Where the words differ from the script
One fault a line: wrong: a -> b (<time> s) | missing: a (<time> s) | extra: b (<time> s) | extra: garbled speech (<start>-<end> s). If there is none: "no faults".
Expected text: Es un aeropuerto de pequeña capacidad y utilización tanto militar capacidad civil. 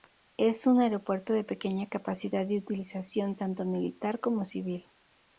wrong: capacidad -> como (4.2 s)